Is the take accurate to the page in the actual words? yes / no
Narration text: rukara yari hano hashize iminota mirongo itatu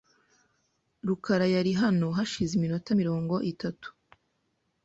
yes